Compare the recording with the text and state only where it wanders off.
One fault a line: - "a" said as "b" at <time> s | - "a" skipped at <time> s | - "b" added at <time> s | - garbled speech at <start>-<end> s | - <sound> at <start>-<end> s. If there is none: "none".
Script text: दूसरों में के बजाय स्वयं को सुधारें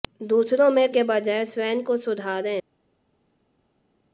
none